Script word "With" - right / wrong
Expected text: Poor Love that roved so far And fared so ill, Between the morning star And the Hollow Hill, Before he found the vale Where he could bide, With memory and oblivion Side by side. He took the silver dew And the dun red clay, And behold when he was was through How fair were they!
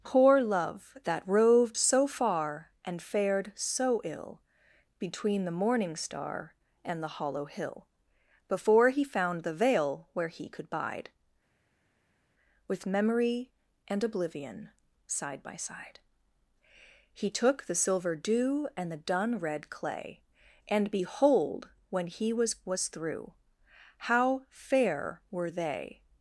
right